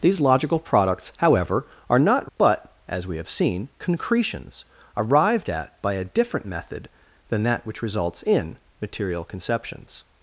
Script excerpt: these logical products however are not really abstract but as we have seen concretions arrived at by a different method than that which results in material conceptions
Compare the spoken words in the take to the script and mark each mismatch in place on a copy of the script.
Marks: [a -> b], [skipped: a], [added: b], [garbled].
these logical products however are not [skipped: really abstract] but as we have seen concretions arrived at by a different method than that which results in material conceptions